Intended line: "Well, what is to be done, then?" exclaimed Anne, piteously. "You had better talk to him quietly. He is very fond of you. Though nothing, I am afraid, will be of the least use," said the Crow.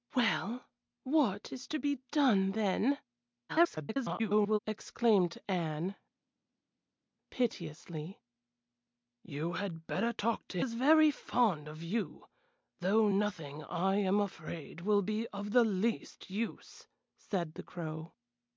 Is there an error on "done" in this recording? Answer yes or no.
no